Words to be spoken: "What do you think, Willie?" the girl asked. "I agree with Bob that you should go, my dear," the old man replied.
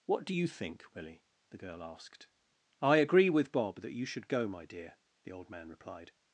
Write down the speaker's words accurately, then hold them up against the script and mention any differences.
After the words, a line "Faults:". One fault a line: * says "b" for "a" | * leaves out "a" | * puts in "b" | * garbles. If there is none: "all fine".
"What do you think, Willie?" the girl asked. "I agree with Bob that you should go, my dear," the old man replied.
Faults:
all fine